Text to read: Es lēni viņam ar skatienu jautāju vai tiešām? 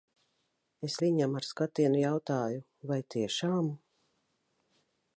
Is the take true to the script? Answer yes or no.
no